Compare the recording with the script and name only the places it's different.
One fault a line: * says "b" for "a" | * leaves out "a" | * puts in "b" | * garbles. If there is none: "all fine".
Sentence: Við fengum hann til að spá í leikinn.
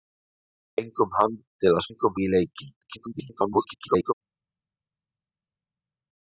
* says "fengum" for "spá"
* garbles